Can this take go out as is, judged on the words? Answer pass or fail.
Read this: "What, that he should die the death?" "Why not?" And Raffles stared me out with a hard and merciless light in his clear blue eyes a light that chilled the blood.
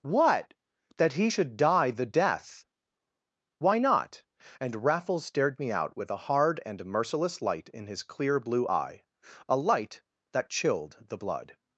fail